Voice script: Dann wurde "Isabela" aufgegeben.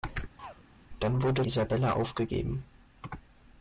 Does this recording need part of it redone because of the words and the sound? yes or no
yes